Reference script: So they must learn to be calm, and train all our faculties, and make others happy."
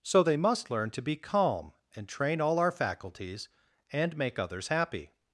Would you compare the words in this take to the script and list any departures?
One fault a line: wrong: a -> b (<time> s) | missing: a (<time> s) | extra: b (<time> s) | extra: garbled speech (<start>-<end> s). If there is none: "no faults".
no faults